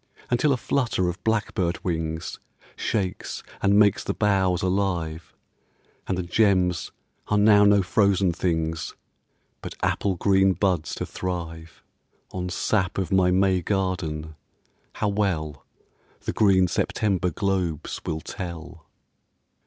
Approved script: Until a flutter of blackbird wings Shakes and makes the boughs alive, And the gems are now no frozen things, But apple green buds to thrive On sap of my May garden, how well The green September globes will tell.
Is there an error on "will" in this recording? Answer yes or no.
no